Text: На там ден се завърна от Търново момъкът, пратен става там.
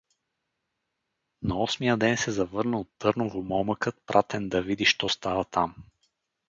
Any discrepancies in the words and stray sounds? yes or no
yes